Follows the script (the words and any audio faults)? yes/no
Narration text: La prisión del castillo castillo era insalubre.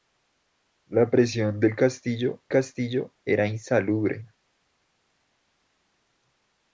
yes